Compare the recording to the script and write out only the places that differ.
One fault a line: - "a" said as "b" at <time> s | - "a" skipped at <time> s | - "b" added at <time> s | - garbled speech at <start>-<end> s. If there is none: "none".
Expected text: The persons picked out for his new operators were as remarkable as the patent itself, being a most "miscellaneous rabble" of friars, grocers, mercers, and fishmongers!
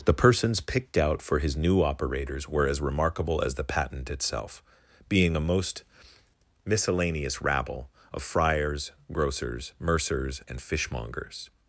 none